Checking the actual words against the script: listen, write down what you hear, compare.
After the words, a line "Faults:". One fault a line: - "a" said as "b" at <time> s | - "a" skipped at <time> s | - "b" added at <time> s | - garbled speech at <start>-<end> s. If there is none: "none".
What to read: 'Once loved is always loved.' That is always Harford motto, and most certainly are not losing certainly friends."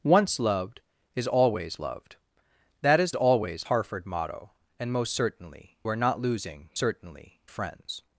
'Once loved is always loved.' That is always Harford motto, and most certainly are not losing certainly friends."
Faults:
none